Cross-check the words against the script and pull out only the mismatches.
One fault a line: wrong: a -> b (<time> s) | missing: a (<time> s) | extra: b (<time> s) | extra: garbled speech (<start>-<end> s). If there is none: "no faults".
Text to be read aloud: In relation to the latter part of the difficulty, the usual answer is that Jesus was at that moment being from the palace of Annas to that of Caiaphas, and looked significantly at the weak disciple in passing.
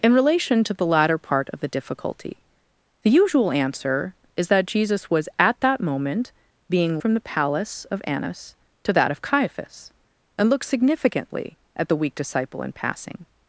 no faults